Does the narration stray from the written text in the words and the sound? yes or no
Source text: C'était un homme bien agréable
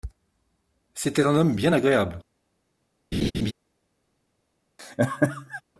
yes